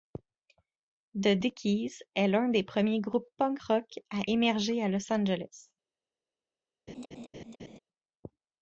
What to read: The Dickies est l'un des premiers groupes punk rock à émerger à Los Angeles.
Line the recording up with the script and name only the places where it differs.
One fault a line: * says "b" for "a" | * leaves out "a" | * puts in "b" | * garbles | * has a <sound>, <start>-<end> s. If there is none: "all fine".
* has a laugh, 6.9-7.8 s